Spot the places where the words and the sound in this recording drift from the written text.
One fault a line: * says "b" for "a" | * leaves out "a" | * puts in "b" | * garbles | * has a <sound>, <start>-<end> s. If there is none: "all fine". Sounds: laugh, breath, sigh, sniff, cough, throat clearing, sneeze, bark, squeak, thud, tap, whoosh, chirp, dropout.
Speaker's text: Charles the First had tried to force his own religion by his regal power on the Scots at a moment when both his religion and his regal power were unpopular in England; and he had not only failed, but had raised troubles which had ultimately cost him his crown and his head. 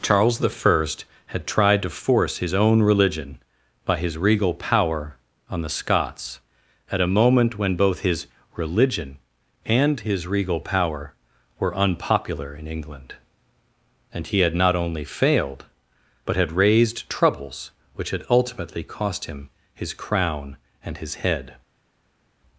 all fine